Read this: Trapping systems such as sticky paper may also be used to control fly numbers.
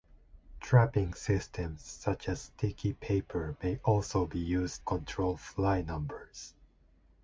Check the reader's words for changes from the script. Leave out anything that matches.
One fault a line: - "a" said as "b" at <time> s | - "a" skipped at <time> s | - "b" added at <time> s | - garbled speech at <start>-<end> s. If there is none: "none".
- "to" skipped at 4.8 s